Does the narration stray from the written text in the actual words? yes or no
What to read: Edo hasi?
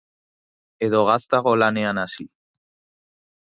yes